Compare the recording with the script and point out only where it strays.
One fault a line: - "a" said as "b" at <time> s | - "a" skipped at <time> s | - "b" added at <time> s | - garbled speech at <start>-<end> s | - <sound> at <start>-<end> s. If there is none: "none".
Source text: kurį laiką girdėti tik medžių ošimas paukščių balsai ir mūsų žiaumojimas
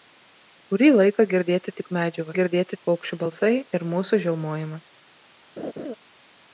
- "ošimas" said as "girdėti" at 2.4 s
- laugh at 5.6-5.9 s